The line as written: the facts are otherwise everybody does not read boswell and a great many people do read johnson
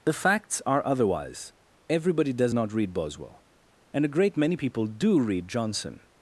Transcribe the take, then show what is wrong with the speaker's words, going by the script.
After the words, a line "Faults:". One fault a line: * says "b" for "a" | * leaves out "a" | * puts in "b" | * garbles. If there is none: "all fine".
the facts are otherwise everybody does not read boswell and a great many people do read johnson
Faults:
all fine